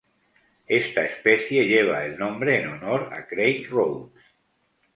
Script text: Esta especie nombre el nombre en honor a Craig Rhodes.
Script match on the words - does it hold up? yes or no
no